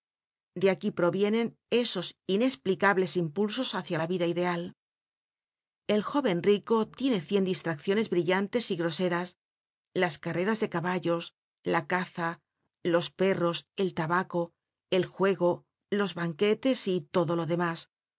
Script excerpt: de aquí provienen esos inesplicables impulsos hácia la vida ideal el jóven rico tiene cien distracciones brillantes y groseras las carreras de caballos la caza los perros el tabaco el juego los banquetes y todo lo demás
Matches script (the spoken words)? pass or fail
pass